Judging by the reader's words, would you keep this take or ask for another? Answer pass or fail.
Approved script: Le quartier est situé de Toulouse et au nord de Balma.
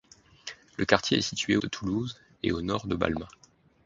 pass